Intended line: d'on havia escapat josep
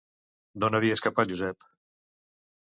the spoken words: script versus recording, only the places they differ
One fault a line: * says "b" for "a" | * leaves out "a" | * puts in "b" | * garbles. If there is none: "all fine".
all fine